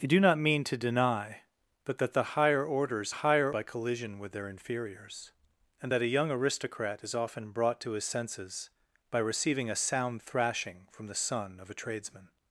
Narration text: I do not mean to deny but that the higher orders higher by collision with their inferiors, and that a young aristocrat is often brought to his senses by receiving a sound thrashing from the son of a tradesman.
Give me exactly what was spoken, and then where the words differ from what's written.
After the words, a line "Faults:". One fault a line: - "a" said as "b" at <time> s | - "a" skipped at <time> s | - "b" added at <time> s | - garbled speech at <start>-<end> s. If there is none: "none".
I do not mean to deny but that the higher orders higher by collision with their inferiors, and that a young aristocrat is often brought to his senses by receiving a sound thrashing from the son of a tradesman.
Faults:
none